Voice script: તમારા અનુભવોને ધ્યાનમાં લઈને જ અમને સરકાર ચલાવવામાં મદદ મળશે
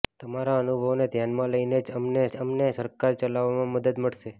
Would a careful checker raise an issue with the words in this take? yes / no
yes